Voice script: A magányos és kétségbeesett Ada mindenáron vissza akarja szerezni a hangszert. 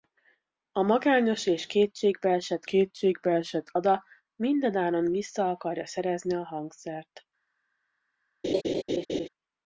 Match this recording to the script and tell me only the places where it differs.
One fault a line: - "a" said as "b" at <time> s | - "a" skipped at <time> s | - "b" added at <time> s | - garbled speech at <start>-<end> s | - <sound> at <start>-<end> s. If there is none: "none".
- "kétségbeesett" added at 2.6 s
- laugh at 8.4-9.3 s